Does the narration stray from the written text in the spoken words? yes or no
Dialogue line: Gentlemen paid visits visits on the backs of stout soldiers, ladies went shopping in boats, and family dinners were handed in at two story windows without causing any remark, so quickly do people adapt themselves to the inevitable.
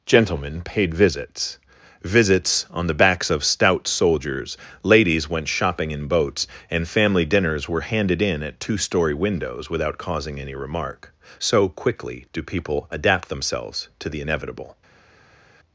no